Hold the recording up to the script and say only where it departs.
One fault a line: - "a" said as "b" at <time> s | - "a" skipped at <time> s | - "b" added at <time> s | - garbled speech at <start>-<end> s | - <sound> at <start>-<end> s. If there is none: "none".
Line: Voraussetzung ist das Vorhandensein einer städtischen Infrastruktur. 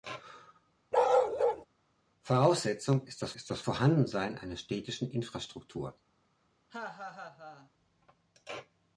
- bark at 0.9-1.7 s
- "ist das" added at 3.3 s
- laugh at 6.7-7.7 s